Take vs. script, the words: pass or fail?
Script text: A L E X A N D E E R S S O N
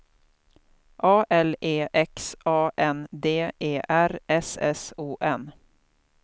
fail